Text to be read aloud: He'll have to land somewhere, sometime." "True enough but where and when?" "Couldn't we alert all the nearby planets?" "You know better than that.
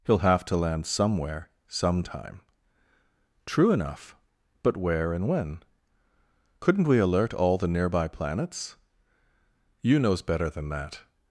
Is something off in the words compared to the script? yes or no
yes